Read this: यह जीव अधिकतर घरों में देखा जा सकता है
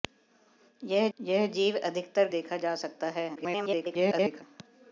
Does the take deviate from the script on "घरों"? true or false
true